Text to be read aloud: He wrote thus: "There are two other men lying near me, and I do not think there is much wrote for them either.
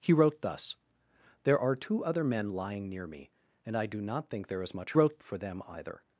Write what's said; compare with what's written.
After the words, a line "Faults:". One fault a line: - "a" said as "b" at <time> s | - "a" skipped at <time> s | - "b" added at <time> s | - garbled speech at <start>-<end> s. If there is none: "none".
He wrote thus: "There are two other men lying near me, and I do not think there is much wrote for them either.
Faults:
none